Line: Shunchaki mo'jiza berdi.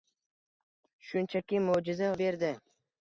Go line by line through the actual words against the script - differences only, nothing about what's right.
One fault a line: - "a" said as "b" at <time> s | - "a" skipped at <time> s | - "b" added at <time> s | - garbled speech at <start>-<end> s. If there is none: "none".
none